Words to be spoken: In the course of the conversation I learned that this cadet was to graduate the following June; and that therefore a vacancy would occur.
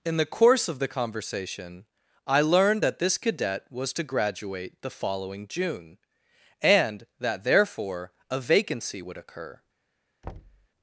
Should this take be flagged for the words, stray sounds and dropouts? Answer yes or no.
yes